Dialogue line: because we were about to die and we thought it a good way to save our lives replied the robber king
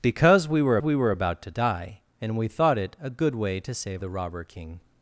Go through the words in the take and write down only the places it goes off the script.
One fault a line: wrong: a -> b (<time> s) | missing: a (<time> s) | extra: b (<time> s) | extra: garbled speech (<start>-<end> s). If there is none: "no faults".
extra: we were (0.8 s)
missing: our lives replied (4.0 s)